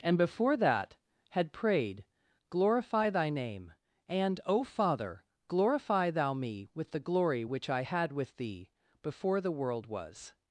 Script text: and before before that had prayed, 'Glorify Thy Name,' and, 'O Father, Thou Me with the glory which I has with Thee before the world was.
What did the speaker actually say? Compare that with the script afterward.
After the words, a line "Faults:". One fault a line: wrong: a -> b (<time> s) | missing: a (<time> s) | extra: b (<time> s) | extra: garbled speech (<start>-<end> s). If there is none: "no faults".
and before that had prayed, 'Glorify Thy Name,' and, 'O Father, glorify Thou Me with the glory which I had with Thee before the world was.
Faults:
missing: before (0.6 s)
extra: glorify (5.5 s)
wrong: has -> had (7.8 s)